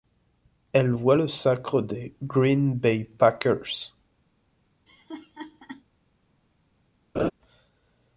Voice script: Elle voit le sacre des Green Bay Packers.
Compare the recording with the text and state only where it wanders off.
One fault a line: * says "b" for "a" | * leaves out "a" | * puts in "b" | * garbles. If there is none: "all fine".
all fine